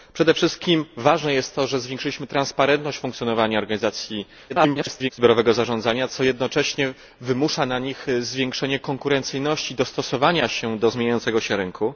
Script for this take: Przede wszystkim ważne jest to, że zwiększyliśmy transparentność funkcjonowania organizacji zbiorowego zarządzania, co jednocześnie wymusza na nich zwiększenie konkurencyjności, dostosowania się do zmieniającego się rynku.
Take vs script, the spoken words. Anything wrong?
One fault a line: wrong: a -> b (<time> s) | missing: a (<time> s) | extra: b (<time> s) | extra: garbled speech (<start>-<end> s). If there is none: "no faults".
extra: garbled speech (4.5-5.1 s)